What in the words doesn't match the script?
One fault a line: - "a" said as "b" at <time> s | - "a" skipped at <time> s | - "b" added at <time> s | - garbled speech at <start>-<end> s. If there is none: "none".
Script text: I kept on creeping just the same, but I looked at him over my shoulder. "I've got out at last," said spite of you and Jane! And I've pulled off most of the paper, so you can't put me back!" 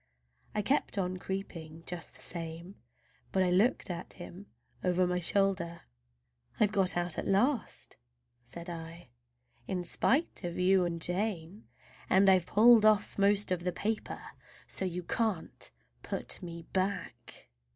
- "I in" added at 8.7 s